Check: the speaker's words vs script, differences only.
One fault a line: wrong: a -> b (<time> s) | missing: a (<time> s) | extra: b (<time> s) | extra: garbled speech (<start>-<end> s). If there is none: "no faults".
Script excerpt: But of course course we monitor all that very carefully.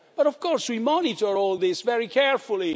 missing: course (0.7 s)
wrong: that -> this (1.5 s)